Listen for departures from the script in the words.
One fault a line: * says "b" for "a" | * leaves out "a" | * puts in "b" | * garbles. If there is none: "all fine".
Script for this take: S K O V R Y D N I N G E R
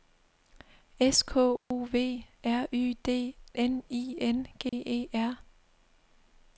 all fine